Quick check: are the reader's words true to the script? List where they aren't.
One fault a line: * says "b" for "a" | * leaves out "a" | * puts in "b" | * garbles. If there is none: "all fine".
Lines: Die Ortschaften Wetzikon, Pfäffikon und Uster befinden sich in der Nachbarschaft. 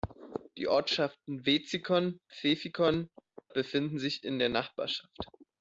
* leaves out "und Uster"